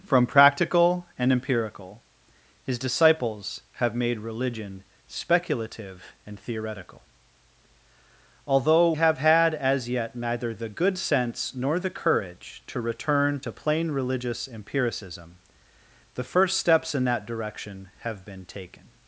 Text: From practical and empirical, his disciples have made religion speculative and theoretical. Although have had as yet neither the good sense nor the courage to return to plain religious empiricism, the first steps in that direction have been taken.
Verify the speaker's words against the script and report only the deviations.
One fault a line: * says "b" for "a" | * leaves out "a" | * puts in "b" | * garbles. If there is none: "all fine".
all fine